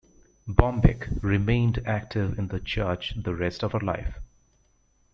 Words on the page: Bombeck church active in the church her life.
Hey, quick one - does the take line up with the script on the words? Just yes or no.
no